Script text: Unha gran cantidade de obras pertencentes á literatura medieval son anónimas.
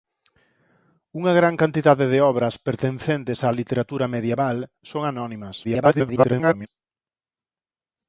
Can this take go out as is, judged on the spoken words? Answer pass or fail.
fail